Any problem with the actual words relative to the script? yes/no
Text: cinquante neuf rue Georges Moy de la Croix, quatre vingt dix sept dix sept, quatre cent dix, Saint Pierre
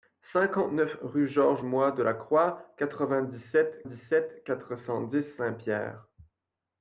no